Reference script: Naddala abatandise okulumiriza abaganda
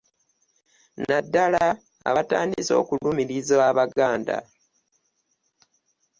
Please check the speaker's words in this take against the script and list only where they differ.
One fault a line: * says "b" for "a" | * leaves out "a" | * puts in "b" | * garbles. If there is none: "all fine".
all fine